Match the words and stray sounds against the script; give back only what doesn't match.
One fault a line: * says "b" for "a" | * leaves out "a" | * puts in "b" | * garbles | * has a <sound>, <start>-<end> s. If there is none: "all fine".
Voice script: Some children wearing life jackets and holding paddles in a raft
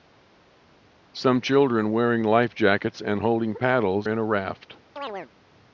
* has a chirp, 5.0-5.3 s